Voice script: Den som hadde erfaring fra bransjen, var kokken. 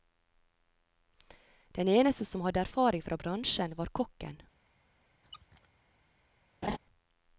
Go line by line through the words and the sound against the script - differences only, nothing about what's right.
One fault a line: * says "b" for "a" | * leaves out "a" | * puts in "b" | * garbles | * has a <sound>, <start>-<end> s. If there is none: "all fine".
* puts in "eneste"
* has a squeak, 5.2-5.7 s
* has a laugh, 6.6-6.8 s